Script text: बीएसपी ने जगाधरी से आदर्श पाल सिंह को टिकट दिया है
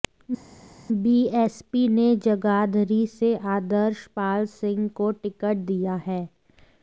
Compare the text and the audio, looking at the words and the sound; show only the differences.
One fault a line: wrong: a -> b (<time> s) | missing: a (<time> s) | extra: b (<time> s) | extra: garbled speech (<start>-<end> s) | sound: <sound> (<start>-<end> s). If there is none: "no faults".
no faults